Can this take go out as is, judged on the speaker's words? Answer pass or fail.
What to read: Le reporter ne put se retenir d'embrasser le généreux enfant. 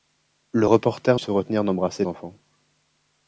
fail